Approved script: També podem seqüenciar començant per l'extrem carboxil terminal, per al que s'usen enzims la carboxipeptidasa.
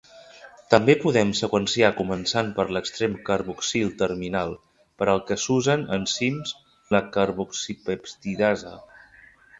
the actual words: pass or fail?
pass